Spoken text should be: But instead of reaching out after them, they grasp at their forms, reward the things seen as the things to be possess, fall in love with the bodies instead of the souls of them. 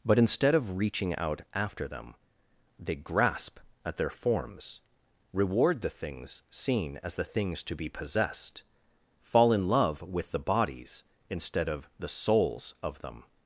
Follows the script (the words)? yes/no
no